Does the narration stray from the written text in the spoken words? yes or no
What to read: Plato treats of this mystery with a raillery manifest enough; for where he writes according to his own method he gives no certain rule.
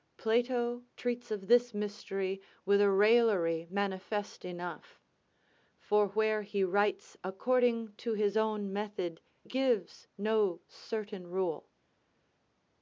yes